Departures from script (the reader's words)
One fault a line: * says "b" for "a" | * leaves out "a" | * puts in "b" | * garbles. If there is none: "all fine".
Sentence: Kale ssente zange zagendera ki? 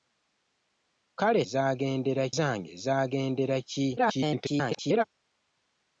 * says "zagendera" for "ssente"
* garbles